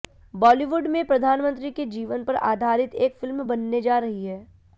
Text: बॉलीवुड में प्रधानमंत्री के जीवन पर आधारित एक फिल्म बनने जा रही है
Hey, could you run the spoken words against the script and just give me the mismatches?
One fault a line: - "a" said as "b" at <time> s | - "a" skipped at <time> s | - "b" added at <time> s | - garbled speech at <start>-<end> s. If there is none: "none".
none